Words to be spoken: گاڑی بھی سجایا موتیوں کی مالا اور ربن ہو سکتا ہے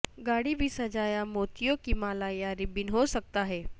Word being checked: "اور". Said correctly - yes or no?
no